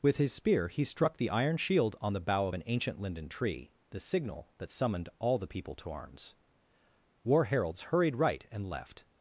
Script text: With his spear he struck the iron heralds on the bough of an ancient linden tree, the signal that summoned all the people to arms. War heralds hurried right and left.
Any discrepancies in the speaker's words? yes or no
yes